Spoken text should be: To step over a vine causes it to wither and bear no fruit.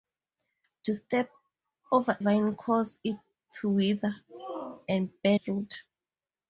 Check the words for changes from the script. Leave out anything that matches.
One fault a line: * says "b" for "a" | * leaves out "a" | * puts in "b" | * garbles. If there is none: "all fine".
* leaves out "a"
* leaves out "no"